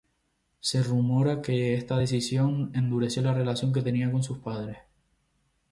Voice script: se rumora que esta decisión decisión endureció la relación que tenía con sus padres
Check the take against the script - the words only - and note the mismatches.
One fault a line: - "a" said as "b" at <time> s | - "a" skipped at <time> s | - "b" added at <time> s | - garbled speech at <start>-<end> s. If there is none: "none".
- "decisión" skipped at 2.7 s